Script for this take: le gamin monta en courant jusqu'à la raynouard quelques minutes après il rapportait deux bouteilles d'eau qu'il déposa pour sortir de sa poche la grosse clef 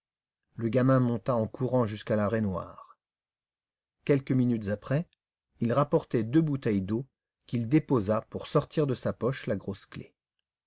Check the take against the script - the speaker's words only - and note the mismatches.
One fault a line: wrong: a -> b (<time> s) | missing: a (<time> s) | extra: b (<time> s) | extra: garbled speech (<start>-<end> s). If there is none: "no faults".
no faults